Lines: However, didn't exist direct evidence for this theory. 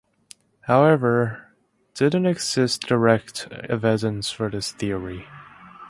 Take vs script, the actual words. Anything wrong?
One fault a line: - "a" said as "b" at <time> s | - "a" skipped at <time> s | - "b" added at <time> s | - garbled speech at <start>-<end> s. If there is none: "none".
none